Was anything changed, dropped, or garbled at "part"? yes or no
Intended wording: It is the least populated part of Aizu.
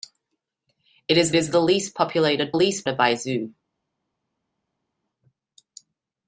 yes